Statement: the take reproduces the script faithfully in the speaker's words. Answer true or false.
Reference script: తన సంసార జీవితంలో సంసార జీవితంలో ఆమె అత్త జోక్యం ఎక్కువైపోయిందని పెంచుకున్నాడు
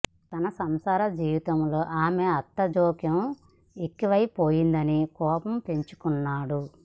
false